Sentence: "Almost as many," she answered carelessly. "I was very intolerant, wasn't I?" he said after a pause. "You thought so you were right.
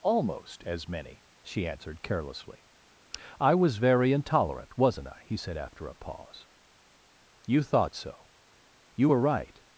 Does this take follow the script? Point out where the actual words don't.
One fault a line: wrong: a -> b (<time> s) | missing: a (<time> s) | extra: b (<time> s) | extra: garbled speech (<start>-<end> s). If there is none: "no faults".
no faults